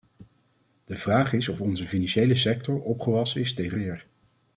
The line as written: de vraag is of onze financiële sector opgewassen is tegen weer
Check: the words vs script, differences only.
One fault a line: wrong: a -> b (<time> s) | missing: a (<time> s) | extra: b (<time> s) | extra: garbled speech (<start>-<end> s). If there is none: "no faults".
no faults